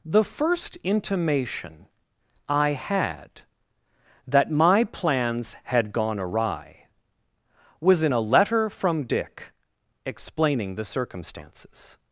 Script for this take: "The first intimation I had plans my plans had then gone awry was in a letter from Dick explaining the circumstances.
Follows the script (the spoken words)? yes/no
no